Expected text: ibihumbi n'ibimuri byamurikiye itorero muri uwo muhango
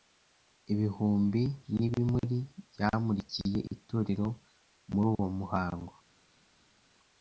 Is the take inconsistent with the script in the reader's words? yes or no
no